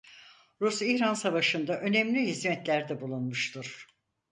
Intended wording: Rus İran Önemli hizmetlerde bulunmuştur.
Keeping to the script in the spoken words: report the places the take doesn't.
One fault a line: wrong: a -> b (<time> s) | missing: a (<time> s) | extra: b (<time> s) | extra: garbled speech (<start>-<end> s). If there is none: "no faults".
extra: Savaşı'nda (1.1 s)